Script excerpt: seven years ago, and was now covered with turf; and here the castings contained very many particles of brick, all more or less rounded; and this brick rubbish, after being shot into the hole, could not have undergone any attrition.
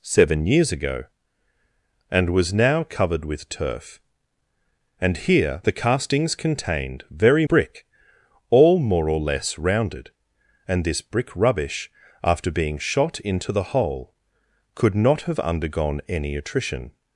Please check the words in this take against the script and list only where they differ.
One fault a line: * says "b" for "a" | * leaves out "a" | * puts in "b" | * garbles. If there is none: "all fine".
* leaves out "many particles of"